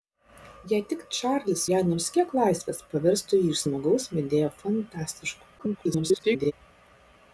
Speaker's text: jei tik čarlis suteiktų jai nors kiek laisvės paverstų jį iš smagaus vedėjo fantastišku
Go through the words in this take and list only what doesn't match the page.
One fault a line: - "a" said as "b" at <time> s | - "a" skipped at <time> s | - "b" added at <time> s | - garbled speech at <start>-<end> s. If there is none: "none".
- "suteiktų" skipped at 1.6 s
- garbled speech at 5.6-6.5 s